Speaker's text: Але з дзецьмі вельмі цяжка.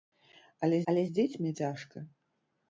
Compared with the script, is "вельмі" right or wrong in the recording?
wrong